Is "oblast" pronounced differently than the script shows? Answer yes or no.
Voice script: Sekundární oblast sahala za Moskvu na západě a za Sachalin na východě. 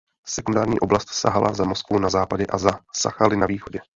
no